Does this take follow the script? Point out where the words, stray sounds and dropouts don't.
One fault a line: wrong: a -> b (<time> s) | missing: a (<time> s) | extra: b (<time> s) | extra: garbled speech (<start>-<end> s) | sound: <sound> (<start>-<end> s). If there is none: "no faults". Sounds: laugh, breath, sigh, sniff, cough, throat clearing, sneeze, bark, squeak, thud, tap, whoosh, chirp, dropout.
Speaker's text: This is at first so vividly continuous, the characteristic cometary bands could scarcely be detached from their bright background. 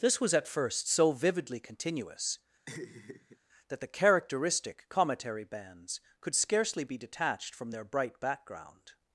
wrong: is -> was (0.2 s)
sound: laugh (2.7-3.4 s)
extra: that (3.7 s)